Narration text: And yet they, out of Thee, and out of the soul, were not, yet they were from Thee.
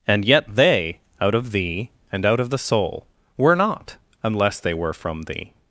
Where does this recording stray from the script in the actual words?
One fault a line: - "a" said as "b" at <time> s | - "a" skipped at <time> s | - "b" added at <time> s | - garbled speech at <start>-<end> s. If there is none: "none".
- "yet" said as "unless" at 4.2 s